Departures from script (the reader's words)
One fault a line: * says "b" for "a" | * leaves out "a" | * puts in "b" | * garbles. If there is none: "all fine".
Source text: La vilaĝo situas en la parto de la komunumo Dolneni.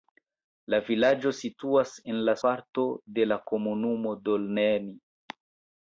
all fine